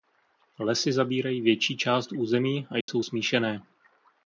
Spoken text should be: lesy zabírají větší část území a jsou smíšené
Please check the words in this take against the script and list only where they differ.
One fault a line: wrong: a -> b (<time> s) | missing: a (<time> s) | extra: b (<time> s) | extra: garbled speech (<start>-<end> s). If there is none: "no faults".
no faults